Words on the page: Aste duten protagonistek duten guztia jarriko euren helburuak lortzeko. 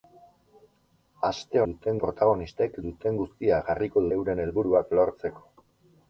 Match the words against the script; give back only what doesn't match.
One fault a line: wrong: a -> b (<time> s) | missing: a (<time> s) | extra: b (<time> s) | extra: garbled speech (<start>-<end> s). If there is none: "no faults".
no faults